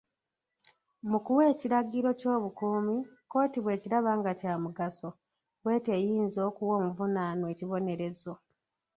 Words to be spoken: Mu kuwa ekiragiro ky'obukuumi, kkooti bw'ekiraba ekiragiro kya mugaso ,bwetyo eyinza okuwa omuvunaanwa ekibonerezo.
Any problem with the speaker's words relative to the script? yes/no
yes